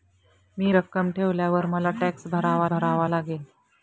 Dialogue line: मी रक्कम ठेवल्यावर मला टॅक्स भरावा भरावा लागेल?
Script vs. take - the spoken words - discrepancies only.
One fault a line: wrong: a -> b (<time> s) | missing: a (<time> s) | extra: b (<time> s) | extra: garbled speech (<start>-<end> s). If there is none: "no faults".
no faults